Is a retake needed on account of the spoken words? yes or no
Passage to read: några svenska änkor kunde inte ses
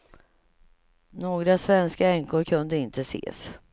no